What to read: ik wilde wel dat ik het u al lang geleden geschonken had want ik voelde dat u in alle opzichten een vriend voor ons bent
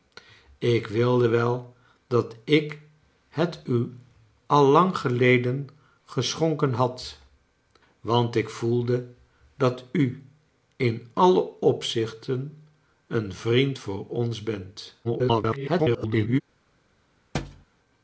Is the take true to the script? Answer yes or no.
no